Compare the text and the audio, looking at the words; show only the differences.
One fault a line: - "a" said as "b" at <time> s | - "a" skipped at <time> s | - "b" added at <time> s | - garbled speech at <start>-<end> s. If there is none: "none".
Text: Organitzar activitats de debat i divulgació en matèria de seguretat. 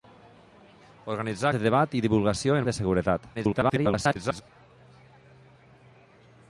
- "activitats" skipped at 1.5 s
- "matèria" skipped at 2.7 s
- garbled speech at 3.3-4.4 s